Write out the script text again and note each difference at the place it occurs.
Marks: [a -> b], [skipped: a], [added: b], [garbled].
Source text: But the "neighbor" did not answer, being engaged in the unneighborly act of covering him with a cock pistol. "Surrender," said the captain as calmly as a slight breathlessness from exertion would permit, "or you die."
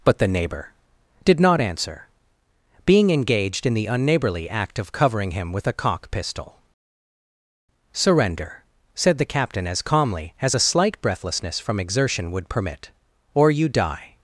But the "neighbor" did not answer, being engaged in the unneighborly act of covering him with a cock pistol. "Surrender," said the captain as calmly as a slight breathlessness from exertion would permit, "or you die."